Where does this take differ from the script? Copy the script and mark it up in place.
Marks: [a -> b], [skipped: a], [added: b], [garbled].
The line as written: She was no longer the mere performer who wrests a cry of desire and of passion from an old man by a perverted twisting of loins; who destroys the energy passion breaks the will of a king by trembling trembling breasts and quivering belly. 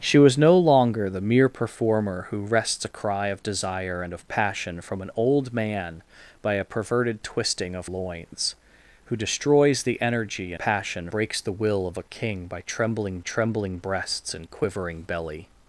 She was no longer the mere performer who wrests a cry of desire and of passion from an old man by a perverted twisting of loins; who destroys the energy passion breaks the will of a king by trembling trembling breasts and quivering belly.